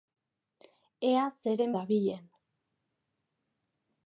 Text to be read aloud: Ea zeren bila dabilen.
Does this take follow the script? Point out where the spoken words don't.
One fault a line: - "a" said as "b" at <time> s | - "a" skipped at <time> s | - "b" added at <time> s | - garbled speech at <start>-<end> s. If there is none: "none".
- "bila" skipped at 1.8 s